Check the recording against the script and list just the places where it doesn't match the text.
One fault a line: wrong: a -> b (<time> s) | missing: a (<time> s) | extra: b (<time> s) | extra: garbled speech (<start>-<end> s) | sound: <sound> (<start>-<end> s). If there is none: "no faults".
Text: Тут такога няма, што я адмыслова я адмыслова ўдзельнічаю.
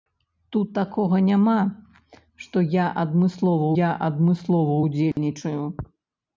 sound: dropout (5.1-5.2 s)